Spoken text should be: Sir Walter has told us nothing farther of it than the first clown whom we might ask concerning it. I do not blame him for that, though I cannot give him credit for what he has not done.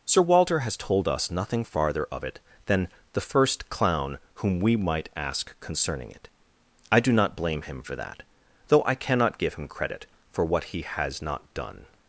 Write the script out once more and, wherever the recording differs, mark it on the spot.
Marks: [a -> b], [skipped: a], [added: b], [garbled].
Sir Walter has told us nothing farther of it than the first clown whom we might ask concerning it. I do not blame him for that, though I cannot give him credit for what he has not done.